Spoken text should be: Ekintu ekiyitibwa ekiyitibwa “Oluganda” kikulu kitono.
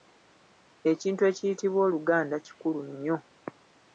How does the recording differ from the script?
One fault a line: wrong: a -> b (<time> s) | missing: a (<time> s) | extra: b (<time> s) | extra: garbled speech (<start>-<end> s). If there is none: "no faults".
missing: ekiyitibwa (1.8 s)
wrong: kitono -> nnyo (2.9 s)